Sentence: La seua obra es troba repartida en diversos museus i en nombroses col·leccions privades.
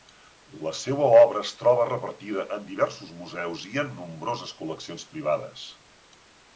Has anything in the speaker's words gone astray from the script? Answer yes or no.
no